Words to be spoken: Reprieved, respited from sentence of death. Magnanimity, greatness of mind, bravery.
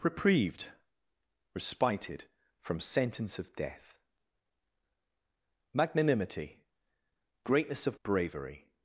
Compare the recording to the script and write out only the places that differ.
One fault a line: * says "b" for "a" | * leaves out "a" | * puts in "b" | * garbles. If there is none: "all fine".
* leaves out "mind"